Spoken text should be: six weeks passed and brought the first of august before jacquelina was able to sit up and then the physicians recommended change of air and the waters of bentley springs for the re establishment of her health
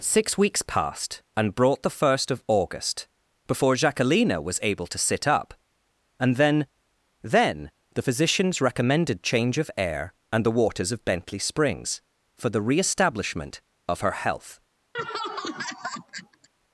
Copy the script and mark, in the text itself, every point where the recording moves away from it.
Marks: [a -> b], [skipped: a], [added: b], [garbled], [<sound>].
six weeks passed and brought the first of august before jacquelina was able to sit up and then [added: then] the physicians recommended change of air and the waters of bentley springs for the re establishment of her health [laugh]